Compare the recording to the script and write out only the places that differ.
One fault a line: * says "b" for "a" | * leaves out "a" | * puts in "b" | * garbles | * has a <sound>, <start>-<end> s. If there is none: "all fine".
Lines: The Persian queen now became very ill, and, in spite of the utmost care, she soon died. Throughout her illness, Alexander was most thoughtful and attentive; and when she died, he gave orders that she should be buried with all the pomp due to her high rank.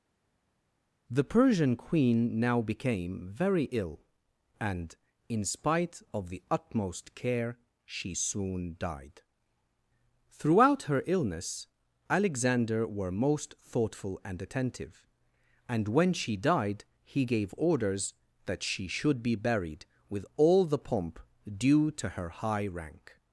* says "were" for "was"